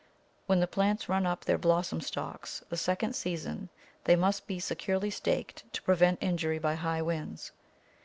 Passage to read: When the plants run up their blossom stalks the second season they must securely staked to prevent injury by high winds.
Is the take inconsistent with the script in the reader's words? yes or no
yes